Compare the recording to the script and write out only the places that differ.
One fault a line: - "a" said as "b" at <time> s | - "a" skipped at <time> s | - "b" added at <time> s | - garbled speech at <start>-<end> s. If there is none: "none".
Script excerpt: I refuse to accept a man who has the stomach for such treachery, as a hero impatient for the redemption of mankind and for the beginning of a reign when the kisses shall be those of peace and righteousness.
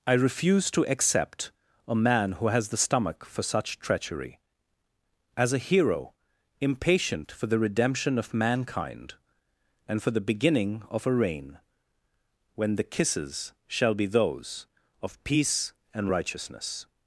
none